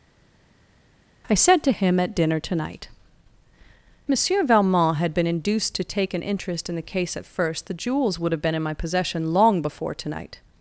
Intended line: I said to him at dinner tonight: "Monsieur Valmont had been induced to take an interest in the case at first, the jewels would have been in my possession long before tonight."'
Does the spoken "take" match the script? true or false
true